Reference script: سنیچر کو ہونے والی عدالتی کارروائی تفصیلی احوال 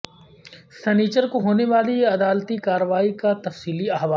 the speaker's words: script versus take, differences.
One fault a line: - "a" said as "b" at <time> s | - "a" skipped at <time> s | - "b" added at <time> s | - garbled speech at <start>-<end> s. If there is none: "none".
- "کا" added at 3.1 s